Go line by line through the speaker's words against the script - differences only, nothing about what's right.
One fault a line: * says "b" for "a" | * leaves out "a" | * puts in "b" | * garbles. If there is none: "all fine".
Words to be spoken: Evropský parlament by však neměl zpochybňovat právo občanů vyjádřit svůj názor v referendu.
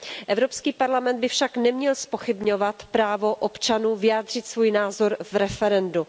all fine